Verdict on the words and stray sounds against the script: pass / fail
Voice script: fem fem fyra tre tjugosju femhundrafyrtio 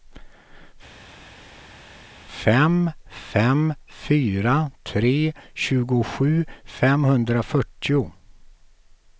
pass